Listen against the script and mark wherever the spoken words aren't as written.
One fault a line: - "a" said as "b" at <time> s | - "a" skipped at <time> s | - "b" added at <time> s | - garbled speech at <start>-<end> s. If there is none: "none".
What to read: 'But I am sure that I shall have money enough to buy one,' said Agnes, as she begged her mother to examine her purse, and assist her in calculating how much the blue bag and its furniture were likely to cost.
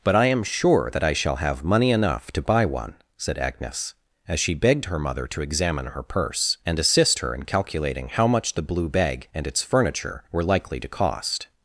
none